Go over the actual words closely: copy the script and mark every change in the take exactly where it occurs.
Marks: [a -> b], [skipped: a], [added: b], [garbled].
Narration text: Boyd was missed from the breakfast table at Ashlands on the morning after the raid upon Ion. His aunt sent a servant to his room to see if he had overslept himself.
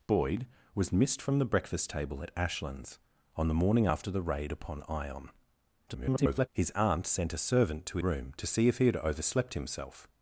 Boyd was missed from the breakfast table at Ashlands on the morning after the raid upon Ion. [garbled] His aunt sent a servant to [skipped: his] room to see if he had overslept himself.